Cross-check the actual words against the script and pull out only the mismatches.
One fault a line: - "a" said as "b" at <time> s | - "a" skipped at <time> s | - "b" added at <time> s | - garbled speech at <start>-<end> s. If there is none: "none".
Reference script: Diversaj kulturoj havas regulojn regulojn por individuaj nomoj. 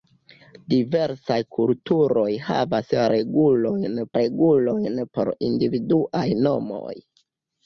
none